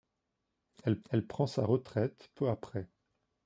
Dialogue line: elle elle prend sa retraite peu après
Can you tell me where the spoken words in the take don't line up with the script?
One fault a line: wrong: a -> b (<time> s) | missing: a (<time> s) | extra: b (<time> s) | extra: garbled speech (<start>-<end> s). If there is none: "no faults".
no faults